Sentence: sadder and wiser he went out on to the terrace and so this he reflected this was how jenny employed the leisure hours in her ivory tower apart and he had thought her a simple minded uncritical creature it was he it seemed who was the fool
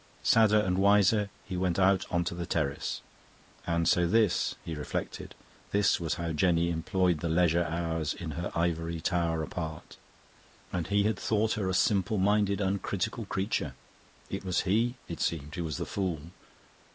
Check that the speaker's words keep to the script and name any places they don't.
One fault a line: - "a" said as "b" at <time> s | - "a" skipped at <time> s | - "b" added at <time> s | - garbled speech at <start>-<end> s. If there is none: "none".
none